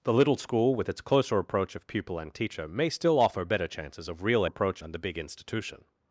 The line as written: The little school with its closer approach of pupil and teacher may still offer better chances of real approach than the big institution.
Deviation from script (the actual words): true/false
false